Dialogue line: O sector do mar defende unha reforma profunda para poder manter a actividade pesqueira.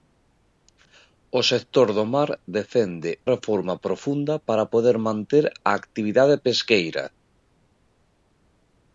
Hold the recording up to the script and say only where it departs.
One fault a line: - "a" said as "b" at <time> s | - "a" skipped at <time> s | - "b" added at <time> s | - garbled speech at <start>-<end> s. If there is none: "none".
- "unha" skipped at 3.1 s